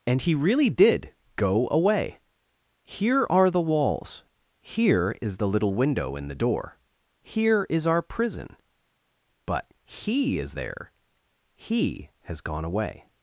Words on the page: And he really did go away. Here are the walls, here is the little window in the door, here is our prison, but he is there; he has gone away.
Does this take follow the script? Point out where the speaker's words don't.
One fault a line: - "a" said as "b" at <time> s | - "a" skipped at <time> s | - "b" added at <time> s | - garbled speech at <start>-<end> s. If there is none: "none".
none